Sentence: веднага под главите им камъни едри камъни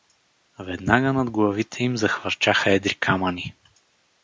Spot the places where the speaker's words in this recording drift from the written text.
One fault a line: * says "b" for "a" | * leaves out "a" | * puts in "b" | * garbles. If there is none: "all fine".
* says "над" for "под"
* says "захвърчаха" for "камъни"